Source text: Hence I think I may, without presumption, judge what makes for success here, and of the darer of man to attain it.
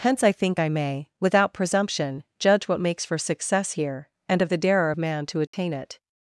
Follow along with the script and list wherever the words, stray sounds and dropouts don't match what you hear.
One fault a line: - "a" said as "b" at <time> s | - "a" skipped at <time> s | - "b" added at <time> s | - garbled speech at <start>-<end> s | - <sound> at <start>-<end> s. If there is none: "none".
- dropout at 5.5-5.5 s